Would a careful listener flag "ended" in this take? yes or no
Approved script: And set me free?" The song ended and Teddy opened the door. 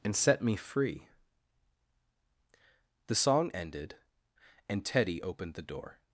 no